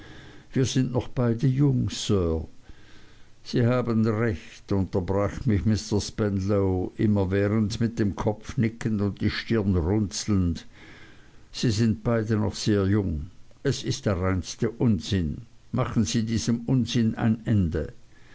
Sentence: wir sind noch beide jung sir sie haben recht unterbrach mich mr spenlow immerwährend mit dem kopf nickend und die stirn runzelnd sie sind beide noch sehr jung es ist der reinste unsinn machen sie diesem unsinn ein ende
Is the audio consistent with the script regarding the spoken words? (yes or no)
yes